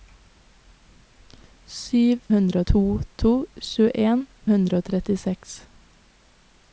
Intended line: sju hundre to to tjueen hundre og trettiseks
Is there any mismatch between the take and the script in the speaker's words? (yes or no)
no